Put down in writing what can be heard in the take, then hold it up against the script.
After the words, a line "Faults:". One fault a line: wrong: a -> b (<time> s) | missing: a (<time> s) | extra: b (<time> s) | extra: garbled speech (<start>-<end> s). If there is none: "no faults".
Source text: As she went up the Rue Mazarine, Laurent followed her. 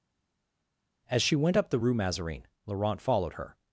As she went up the Rue Mazarine, Laurent followed her.
Faults:
no faults